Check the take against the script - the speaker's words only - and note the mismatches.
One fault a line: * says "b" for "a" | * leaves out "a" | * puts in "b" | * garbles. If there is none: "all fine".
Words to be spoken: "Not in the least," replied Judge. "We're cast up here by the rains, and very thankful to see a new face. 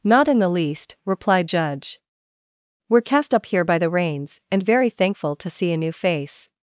all fine